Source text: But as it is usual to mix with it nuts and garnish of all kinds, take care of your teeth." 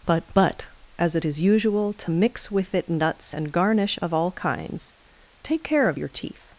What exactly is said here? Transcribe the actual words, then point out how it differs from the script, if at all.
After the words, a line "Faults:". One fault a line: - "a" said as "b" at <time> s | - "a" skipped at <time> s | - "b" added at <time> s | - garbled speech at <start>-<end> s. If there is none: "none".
But but as it is usual to mix with it nuts and garnish of all kinds, take care of your teeth."
Faults:
- "but" added at 0.3 s